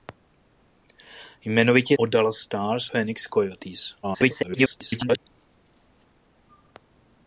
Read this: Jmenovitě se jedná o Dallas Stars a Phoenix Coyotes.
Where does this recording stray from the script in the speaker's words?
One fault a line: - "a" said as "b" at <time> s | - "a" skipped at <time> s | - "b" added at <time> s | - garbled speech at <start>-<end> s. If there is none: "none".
- "se jedná" skipped at 2.0 s
- "a" skipped at 2.8 s
- garbled speech at 4.0-5.2 s